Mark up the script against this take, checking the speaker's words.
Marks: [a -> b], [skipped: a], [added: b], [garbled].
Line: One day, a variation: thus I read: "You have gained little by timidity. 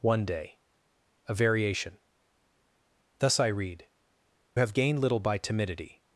One day, a variation: thus I read: [skipped: "You] have gained little by timidity.